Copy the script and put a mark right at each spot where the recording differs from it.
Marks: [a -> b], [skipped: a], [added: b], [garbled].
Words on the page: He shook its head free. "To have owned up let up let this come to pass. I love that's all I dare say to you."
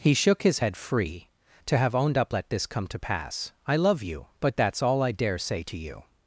He shook [its -> his] head free. "To have owned up let [skipped: up let] this come to pass. I love [added: you but] that's all I dare say to you."